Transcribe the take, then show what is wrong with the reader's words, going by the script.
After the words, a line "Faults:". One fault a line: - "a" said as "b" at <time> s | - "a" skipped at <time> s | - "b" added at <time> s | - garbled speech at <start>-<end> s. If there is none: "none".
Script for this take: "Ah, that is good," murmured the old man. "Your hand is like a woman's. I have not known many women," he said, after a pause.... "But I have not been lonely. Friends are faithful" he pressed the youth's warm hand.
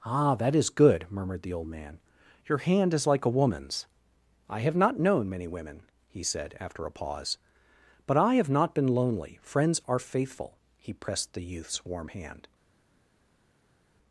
"Ah, that is good," murmured the old man. "Your hand is like a woman's. I have not known many women," he said, after a pause.... "But I have not been lonely. Friends are faithful" he pressed the youth's warm hand.
Faults:
none